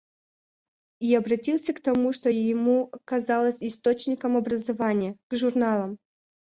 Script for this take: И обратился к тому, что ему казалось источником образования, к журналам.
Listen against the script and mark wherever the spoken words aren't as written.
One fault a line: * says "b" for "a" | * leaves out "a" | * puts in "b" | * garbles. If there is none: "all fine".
all fine